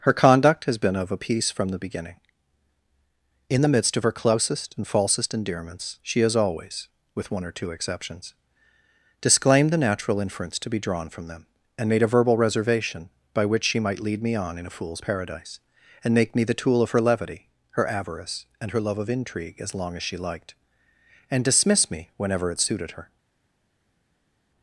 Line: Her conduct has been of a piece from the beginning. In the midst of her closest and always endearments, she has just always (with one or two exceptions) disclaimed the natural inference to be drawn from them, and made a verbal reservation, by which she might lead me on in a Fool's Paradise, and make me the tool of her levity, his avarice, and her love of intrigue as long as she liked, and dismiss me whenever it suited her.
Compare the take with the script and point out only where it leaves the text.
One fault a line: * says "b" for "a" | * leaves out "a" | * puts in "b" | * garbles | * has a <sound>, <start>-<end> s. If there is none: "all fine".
* says "falsest" for "always"
* leaves out "just"
* says "her" for "his"